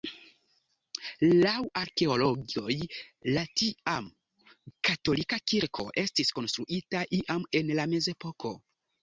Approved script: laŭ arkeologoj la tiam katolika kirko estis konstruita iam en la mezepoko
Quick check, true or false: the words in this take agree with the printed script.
true